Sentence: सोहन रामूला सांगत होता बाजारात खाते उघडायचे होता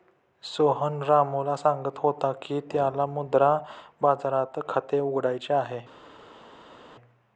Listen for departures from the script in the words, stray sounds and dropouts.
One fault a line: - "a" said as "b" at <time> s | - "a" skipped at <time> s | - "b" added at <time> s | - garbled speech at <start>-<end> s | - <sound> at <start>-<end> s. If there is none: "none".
- "की त्याला मुद्रा" added at 2.4 s
- "होता" said as "आहे" at 5.5 s